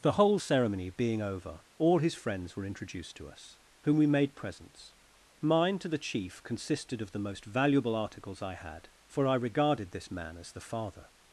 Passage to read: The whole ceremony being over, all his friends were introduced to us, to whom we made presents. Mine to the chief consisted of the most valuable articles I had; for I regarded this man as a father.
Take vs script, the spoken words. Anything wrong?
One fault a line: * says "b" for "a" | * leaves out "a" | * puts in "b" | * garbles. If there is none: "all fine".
* leaves out "to"
* says "the" for "a"